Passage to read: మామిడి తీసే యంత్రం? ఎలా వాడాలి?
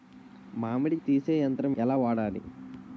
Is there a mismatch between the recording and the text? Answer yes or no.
no